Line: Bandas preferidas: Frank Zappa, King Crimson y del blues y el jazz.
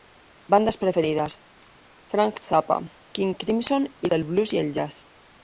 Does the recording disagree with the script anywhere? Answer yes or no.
no